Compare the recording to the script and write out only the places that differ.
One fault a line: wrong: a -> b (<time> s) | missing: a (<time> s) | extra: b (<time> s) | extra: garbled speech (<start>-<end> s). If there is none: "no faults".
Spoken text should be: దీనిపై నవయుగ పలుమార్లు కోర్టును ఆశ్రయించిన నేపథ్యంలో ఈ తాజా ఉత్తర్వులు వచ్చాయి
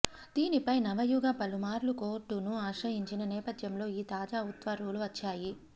no faults